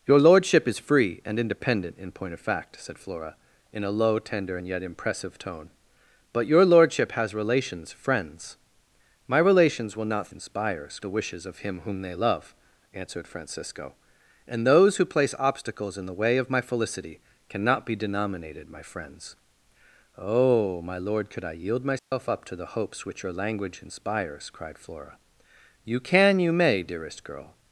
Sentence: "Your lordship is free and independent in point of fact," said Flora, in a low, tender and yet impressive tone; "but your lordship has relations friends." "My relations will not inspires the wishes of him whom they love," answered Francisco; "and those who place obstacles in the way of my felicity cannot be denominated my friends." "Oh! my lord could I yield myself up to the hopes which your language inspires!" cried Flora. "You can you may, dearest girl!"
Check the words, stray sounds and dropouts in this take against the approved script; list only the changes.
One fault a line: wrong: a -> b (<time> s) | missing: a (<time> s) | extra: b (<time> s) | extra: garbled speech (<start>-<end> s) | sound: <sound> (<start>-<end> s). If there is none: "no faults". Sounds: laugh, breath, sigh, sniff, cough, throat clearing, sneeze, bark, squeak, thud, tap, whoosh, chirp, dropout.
sound: dropout (22.0-22.1 s)